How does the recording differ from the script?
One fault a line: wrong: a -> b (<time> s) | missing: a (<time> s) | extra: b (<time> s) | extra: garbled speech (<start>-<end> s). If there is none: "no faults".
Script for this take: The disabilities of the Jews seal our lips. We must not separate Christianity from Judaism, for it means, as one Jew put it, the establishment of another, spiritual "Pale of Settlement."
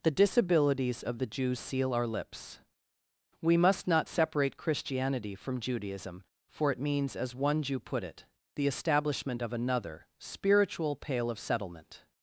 no faults